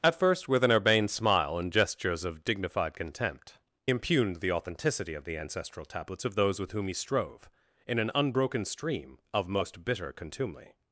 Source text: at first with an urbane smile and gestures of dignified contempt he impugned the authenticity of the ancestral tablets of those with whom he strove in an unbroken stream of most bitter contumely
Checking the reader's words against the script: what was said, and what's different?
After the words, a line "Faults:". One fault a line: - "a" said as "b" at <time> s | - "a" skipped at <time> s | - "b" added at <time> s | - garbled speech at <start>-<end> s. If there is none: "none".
at first with an urbane smile and gestures of dignified contempt impugned the authenticity of the ancestral tablets of those with whom he strove in an unbroken stream of most bitter contumely
Faults:
- "he" skipped at 3.6 s